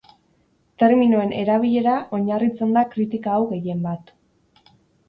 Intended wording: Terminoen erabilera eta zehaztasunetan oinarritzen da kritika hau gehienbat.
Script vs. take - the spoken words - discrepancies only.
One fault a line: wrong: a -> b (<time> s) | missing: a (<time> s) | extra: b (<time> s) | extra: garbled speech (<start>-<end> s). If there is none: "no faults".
missing: eta zehaztasunetan (1.9 s)